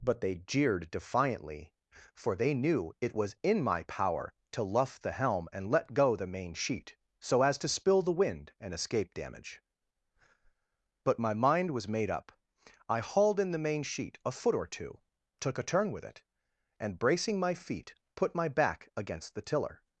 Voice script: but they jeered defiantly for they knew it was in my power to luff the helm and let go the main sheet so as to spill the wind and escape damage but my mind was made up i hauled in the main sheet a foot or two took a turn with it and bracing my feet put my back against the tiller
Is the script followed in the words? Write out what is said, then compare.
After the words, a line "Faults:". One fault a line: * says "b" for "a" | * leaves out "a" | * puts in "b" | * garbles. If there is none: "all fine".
but they jeered defiantly for they knew it was in my power to luff the helm and let go the main sheet so as to spill the wind and escape damage but my mind was made up i hauled in the main sheet a foot or two took a turn with it and bracing my feet put my back against the tiller
Faults:
all fine